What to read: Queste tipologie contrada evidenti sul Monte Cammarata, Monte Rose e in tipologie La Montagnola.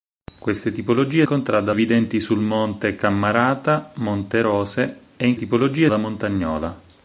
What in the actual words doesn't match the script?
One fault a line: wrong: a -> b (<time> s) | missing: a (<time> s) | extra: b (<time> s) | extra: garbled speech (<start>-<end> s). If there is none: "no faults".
no faults